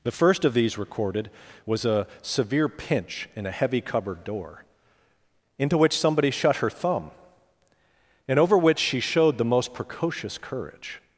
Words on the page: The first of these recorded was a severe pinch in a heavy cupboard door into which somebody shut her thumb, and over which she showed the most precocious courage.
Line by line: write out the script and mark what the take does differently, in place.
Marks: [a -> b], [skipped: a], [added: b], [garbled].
The first of these recorded was a severe pinch in a heavy cupboard door into which somebody shut her thumb, and over which she showed the most precocious courage.